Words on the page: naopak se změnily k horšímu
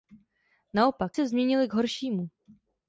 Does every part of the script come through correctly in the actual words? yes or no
yes